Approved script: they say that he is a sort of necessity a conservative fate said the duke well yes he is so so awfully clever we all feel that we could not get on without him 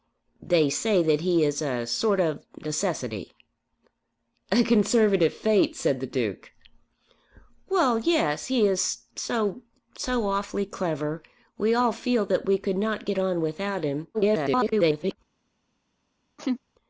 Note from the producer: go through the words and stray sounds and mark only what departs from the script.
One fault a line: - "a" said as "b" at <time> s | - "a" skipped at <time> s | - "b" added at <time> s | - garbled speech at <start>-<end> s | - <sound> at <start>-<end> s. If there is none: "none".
- garbled speech at 14.1-15.2 s
- laugh at 16.4-16.6 s